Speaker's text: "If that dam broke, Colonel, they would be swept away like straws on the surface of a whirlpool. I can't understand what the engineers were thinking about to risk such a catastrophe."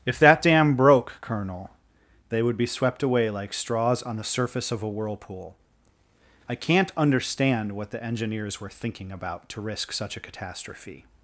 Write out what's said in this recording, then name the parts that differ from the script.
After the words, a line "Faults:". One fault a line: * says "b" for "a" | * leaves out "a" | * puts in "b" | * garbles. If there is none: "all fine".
"If that dam broke, Colonel, they would be swept away like straws on the surface of a whirlpool. I can't understand what the engineers were thinking about to risk such a catastrophe."
Faults:
all fine